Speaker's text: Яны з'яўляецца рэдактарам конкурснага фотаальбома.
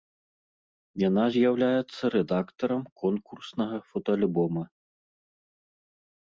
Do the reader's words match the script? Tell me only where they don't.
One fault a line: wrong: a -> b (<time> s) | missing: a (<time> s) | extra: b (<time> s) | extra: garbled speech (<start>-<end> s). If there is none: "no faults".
wrong: Яны -> Яна (1.1 s)